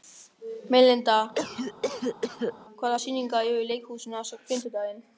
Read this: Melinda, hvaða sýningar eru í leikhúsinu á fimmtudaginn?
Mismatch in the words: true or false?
false